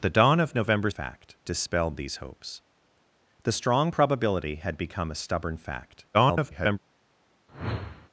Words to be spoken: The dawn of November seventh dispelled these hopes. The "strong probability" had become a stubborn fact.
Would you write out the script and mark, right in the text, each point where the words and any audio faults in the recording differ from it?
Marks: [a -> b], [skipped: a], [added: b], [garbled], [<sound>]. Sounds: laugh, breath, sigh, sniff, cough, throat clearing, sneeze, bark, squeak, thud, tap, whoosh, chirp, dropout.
The dawn of November [seventh -> fact] dispelled these hopes. The "strong probability" had become a stubborn fact. [garbled] [whoosh]